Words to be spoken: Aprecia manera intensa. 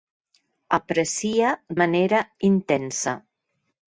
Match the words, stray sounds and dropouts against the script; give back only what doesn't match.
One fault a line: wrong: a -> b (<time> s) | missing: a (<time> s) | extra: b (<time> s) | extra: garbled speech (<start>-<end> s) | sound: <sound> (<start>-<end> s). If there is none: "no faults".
no faults